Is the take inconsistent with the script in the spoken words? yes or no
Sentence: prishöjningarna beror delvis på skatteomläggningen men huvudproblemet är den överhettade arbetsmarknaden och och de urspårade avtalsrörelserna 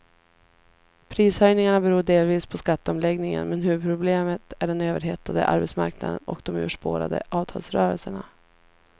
yes